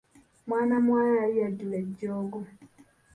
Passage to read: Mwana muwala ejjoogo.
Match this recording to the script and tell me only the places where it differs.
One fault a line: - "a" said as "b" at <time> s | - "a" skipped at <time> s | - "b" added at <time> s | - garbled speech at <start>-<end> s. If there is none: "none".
- "yali yajjula" added at 1.2 s